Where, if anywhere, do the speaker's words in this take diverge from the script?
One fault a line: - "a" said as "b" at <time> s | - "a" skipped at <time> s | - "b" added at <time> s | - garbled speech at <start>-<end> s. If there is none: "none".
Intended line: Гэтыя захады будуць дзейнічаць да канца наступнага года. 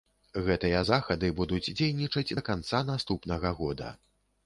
none